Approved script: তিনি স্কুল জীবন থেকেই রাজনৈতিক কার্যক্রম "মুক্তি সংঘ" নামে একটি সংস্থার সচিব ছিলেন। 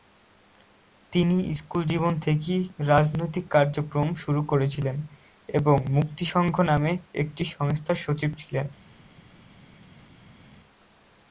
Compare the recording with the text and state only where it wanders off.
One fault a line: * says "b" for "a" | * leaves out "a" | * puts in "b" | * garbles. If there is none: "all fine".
* puts in "শুরু করেছিলেন এবং"